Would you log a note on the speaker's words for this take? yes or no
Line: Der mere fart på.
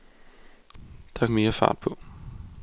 no